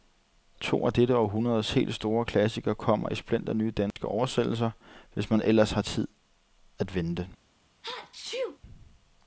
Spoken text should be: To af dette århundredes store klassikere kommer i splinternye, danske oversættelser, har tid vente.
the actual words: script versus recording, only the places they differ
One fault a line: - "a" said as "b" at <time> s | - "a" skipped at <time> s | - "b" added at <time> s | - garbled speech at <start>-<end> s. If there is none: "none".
- "helt" added at 1.7 s
- "hvis man ellers" added at 5.1 s
- "at" added at 6.8 s